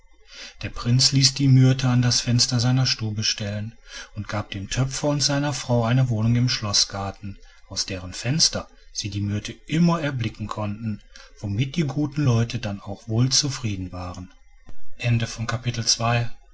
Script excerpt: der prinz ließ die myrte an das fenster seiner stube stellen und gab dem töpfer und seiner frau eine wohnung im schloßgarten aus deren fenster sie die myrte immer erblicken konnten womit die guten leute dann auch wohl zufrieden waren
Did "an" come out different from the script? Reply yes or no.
no